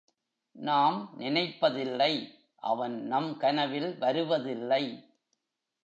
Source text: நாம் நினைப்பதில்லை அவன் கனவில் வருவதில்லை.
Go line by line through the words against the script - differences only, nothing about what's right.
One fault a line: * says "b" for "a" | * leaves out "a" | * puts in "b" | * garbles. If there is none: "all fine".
* puts in "நம்"